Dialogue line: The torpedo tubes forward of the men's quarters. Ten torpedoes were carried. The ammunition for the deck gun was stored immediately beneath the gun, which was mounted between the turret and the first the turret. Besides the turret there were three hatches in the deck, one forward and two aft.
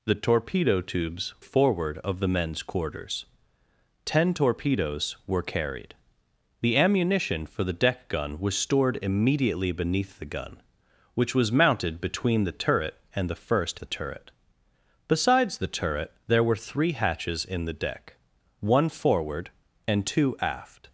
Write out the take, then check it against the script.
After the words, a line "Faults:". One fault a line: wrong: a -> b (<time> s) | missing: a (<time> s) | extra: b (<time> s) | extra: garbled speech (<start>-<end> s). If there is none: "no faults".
The torpedo tubes forward of the men's quarters. Ten torpedoes were carried. The ammunition for the deck gun was stored immediately beneath the gun, which was mounted between the turret and the first the turret. Besides the turret there were three hatches in the deck, one forward and two aft.
Faults:
no faults